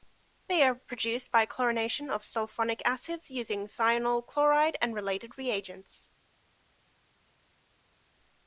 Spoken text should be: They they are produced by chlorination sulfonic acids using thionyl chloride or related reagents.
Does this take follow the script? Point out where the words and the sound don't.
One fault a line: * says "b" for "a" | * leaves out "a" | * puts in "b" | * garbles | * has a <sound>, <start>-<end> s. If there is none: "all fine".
* leaves out "they"
* puts in "of"
* says "and" for "or"